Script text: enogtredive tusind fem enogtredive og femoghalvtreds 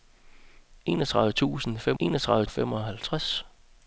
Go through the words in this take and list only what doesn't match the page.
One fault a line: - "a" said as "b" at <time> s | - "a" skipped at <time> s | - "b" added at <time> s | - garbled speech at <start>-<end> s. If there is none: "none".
none